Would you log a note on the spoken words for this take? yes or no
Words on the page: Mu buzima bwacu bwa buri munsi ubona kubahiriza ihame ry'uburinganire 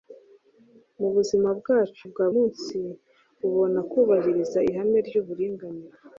yes